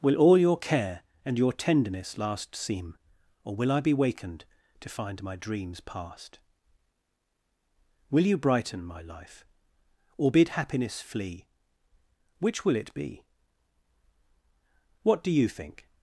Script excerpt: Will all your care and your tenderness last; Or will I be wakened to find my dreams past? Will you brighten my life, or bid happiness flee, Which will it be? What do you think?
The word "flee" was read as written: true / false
true